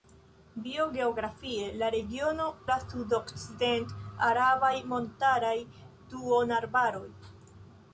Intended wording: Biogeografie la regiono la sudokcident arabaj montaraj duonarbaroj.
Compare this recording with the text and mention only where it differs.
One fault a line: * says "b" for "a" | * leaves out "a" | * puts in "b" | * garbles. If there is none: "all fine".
all fine